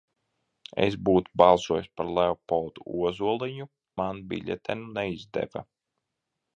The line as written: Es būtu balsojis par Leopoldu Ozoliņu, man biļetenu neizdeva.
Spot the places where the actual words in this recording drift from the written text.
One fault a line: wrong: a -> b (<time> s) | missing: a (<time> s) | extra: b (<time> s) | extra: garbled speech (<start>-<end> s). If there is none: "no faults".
no faults